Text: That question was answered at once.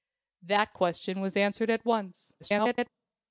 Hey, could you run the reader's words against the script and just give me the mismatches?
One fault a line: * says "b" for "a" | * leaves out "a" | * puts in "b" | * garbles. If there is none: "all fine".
* garbles